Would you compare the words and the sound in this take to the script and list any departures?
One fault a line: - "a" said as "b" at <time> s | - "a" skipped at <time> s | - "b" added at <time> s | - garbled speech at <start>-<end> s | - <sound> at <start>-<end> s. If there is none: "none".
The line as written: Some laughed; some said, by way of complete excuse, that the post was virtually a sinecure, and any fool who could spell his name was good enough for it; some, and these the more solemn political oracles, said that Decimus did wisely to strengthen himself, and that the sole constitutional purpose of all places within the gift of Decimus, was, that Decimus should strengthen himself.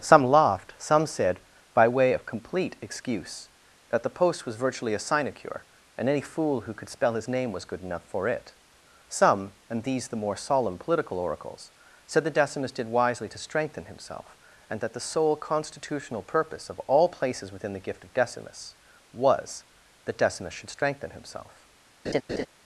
- laugh at 22.0-22.5 s